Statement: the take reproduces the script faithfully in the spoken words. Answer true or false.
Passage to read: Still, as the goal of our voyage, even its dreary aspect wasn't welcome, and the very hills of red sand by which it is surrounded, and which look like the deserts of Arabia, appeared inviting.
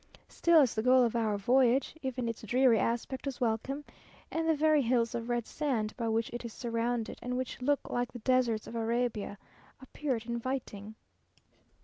false